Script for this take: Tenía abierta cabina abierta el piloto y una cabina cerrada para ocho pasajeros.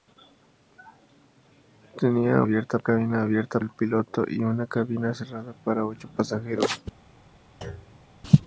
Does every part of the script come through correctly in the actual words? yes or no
yes